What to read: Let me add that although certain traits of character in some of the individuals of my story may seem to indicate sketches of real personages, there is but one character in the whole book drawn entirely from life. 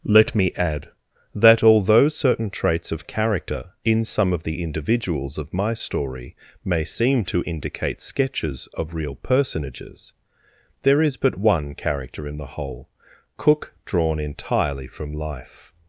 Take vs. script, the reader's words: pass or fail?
fail